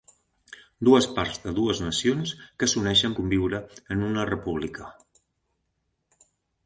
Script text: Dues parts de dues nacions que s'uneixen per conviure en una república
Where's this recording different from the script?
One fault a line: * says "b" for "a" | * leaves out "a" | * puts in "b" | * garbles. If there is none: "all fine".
* leaves out "per"